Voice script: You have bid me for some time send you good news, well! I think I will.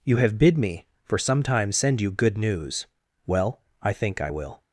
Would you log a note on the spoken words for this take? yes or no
no